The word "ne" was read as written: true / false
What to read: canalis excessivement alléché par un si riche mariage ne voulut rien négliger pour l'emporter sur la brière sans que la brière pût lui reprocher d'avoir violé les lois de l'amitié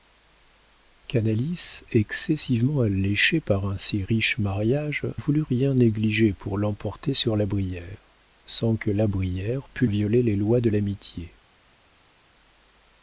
false